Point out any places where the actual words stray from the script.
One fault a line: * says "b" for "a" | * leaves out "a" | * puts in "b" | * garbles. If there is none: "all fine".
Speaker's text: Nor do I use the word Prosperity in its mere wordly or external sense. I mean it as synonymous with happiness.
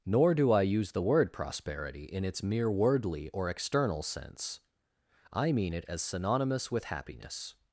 all fine